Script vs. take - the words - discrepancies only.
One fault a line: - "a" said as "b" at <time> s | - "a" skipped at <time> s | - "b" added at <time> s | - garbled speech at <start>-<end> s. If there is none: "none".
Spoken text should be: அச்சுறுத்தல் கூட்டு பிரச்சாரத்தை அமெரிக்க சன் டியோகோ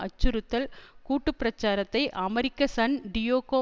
none